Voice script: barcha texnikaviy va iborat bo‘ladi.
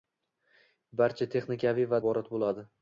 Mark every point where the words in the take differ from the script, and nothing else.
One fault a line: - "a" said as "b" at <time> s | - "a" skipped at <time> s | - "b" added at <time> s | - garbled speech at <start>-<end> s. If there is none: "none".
none